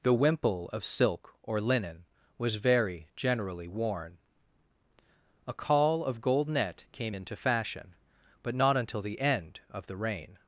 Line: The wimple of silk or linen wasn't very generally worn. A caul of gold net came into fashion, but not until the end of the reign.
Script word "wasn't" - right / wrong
wrong